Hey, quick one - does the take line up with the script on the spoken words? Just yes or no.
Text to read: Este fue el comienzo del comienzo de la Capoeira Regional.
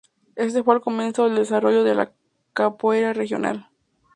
no